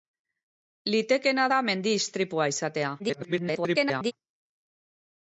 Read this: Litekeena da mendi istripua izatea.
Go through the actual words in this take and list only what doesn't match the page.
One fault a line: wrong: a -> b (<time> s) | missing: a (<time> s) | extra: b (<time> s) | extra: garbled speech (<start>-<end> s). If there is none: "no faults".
extra: garbled speech (3.0-4.1 s)